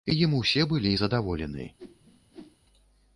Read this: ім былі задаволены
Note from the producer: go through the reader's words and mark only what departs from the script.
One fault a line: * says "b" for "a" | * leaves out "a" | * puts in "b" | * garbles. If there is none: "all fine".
* puts in "усе"